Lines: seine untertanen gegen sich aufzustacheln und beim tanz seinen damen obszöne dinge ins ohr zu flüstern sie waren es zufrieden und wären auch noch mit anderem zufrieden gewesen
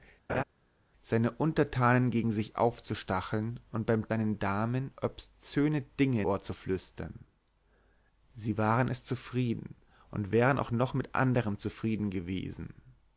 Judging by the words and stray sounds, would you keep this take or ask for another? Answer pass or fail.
fail